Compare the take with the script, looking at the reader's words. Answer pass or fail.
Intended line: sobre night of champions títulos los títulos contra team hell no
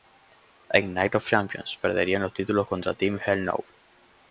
fail